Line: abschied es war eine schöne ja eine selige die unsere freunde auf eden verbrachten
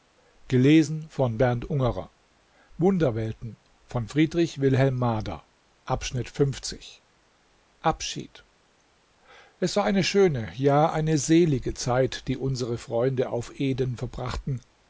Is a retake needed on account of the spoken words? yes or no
yes